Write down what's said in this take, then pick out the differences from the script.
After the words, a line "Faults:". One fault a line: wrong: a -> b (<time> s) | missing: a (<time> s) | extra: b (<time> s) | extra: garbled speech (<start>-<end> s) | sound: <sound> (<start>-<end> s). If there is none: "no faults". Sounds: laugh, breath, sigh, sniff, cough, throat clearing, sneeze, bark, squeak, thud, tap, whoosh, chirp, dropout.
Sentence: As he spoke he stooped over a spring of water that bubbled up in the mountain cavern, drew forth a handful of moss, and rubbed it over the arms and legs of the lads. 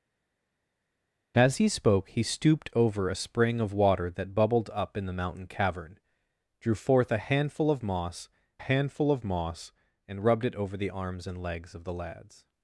As he spoke he stooped over a spring of water that bubbled up in the mountain cavern, drew forth a handful of moss handful of moss, and rubbed it over the arms and legs of the lads.
Faults:
extra: handful of moss (8.6 s)